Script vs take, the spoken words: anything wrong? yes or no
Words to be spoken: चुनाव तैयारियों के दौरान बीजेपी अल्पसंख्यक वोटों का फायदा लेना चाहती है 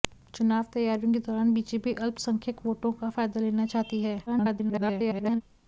yes